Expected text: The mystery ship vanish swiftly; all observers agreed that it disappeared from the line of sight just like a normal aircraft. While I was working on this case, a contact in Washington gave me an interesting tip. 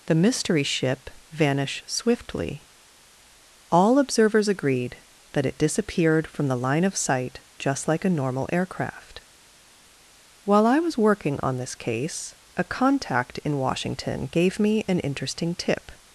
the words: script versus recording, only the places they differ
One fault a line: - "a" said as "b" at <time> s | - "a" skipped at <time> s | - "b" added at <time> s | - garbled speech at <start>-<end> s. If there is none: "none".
none